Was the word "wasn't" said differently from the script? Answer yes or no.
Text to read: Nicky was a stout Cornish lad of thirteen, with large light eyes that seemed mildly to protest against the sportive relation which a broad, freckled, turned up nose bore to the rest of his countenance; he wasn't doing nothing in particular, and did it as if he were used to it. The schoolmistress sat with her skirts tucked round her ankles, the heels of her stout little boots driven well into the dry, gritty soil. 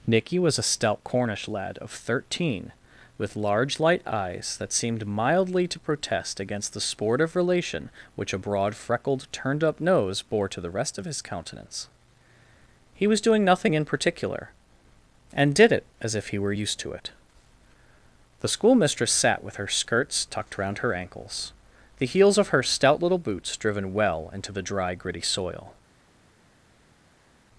yes